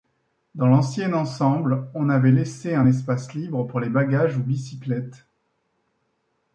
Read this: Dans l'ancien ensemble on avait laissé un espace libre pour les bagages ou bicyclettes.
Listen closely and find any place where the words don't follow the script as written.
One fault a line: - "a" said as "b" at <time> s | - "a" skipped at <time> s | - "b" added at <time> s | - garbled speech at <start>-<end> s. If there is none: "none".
none